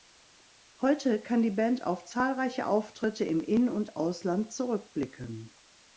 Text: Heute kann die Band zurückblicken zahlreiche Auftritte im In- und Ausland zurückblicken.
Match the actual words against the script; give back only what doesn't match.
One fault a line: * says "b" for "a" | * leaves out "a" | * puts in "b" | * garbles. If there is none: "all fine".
* says "auf" for "zurückblicken"